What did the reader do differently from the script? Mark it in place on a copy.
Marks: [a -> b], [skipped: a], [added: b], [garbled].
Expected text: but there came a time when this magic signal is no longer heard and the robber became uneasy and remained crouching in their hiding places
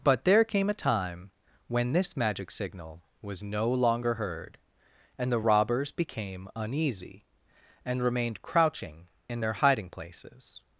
but there came a time when this magic signal [is -> was] no longer heard and the [robber -> robbers] became uneasy and remained crouching in their hiding places